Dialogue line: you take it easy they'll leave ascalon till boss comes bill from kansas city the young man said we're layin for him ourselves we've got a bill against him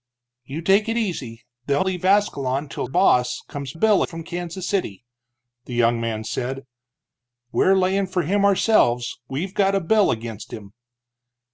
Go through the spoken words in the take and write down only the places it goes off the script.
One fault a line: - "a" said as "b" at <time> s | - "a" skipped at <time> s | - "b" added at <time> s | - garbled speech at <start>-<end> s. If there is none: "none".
none